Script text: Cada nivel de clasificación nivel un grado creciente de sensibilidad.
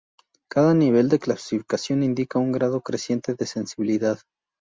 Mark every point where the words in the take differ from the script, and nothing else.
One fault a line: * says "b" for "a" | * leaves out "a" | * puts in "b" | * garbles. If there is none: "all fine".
* says "indica" for "nivel"